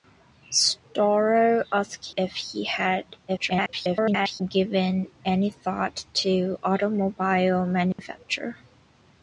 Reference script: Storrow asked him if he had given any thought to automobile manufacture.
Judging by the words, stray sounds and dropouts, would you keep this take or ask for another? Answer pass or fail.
fail